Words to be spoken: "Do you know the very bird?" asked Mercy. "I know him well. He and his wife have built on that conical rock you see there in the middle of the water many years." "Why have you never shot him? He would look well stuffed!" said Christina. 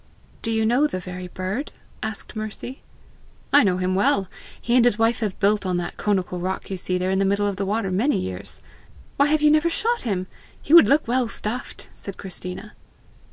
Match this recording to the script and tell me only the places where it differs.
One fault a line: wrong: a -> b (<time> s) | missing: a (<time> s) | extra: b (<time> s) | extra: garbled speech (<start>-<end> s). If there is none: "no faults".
no faults